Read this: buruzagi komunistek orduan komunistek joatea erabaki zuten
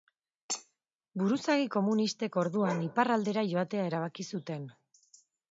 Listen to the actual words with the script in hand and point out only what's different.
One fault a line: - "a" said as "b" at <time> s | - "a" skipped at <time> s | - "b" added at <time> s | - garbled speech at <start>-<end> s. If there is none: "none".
- "komunistek" said as "iparraldera" at 2.9 s